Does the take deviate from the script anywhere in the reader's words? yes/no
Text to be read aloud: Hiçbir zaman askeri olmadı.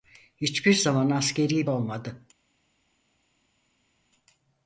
no